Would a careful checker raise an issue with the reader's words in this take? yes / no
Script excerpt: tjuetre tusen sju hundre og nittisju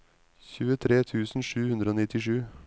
no